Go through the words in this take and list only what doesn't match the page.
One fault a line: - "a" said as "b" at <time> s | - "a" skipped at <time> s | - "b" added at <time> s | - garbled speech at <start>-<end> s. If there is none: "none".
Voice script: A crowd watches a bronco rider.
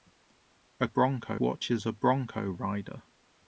- "crowd" said as "bronco" at 0.8 s